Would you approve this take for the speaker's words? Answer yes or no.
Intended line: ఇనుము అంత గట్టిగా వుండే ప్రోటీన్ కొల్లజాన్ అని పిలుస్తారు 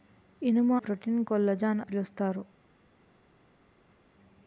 no